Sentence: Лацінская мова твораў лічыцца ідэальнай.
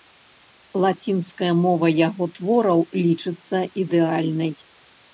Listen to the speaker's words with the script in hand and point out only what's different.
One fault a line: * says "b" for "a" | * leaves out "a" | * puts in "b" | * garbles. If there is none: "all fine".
* puts in "яго"